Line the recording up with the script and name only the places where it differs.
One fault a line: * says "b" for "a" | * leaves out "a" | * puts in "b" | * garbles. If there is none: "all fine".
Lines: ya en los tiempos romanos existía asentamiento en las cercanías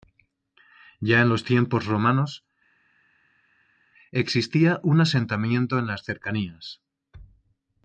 * puts in "un"